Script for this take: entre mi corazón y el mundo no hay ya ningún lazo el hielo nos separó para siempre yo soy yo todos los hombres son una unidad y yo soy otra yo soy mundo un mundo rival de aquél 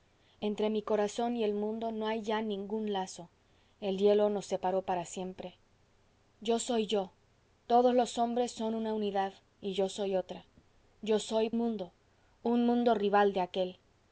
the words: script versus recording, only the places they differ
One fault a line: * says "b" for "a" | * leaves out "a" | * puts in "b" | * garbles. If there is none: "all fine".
all fine